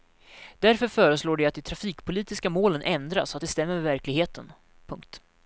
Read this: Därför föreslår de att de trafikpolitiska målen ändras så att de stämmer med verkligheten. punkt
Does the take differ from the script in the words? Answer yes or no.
no